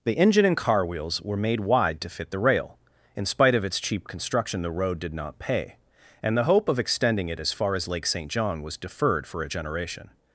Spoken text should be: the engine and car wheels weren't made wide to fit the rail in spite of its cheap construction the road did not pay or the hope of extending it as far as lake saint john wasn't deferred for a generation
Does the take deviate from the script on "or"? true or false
true